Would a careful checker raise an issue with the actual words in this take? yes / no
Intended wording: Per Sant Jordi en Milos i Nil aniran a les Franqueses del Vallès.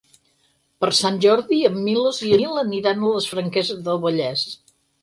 no